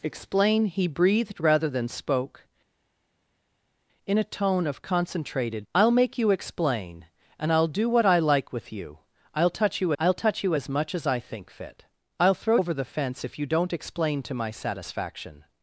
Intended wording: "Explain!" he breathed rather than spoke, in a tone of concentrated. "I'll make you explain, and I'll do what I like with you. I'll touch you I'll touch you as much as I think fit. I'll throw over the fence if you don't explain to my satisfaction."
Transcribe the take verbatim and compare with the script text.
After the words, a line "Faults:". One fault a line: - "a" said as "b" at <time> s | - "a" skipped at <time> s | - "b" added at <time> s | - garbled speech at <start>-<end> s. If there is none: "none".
"Explain!" he breathed rather than spoke, in a tone of concentrated. "I'll make you explain, and I'll do what I like with you. I'll touch you I'll touch you as much as I think fit. I'll throw over the fence if you don't explain to my satisfaction."
Faults:
none